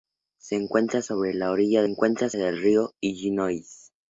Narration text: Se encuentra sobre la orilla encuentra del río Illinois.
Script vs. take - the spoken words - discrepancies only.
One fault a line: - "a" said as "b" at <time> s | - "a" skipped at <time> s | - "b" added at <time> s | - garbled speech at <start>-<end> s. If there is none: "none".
none